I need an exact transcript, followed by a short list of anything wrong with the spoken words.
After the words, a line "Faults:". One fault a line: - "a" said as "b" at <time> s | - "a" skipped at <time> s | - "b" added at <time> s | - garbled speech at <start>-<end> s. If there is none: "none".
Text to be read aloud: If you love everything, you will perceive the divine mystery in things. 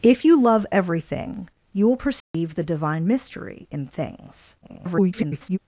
If you love everything, you will perceive the divine mystery in things. [garbled]
Faults:
- garbled speech at 4.6-5.6 s